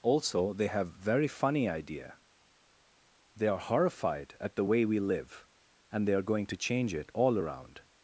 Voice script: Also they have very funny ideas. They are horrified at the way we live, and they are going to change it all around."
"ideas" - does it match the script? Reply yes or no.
no